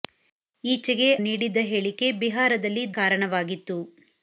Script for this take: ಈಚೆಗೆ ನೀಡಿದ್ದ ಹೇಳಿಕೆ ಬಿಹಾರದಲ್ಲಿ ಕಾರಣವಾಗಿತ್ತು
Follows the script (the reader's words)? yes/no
yes